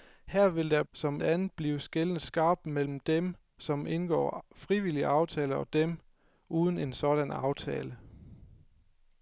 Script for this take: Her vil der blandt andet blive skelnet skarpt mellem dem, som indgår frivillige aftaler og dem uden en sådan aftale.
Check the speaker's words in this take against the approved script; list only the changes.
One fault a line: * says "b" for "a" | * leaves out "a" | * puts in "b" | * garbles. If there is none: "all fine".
* says "som" for "blandt"